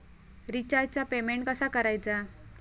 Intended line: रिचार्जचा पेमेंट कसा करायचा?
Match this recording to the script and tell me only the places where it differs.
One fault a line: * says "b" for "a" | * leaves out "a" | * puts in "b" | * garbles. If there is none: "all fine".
all fine